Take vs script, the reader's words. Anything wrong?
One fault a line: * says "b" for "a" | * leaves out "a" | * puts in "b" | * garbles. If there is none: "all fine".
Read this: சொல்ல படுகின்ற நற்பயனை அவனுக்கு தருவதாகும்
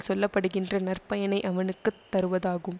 all fine